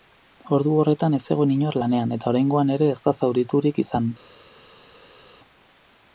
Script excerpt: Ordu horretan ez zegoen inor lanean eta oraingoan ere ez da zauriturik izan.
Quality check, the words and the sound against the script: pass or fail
pass